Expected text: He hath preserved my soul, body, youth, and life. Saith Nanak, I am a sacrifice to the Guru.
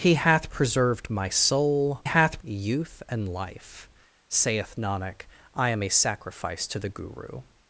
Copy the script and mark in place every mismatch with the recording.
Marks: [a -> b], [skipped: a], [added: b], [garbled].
He hath preserved my soul, [body, -> hath] youth, and life. Saith Nanak, I am a sacrifice to the Guru.